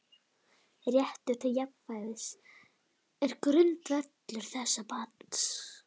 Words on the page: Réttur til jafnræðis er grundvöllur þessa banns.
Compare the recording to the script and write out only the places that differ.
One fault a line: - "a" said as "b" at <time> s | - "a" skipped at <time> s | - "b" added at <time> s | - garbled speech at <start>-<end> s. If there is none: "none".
none